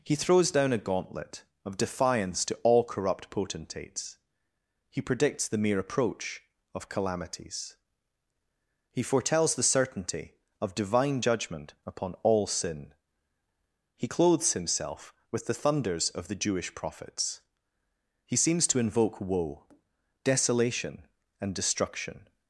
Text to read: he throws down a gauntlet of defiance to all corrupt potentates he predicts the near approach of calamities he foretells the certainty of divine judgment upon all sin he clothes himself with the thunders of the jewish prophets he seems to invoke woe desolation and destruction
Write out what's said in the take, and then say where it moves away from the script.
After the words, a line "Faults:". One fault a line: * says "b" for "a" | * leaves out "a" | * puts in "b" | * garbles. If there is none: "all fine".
he throws down a gauntlet of defiance to all corrupt potentates he predicts the mere approach of calamities he foretells the certainty of divine judgment upon all sin he clothes himself with the thunders of the jewish prophets he seems to invoke woe desolation and destruction
Faults:
* says "mere" for "near"